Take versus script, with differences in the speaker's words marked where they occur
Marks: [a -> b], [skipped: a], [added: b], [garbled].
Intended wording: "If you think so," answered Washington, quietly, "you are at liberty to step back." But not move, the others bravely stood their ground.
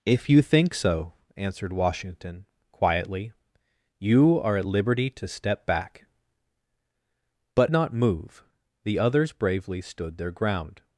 "If you think so," answered Washington, quietly, "you are at liberty to step back." But not move, the others bravely stood their ground.